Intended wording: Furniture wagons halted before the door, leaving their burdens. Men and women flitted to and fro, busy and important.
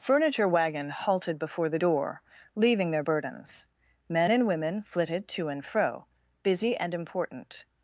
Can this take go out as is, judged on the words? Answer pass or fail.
fail